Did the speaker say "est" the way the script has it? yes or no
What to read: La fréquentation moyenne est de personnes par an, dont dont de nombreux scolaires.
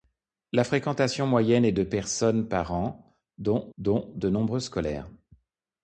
yes